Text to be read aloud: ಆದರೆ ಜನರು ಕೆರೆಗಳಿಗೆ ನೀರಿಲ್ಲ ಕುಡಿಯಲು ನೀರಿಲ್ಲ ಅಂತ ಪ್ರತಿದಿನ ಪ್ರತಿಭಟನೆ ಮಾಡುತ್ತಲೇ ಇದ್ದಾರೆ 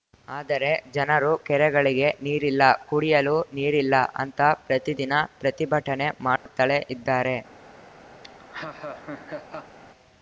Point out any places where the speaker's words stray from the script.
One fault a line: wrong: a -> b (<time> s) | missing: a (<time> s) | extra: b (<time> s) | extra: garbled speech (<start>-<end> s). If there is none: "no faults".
no faults